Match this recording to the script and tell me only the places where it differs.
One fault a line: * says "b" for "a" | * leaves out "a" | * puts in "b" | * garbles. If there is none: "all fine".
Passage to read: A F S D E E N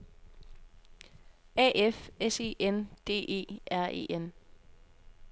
* puts in "E N"
* puts in "R"